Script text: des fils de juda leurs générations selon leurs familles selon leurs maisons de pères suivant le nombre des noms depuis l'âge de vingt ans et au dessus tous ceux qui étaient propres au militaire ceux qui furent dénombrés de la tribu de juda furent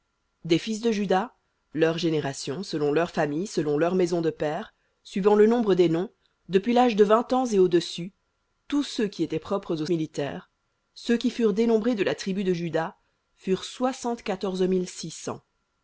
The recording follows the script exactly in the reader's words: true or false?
true